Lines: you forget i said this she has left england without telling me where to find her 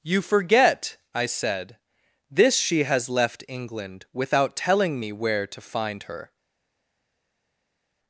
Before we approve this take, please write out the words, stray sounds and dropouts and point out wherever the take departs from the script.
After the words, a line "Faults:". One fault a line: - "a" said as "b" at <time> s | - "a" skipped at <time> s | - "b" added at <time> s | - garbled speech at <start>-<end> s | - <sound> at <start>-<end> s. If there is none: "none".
you forget i said this she has left england without telling me where to find her
Faults:
none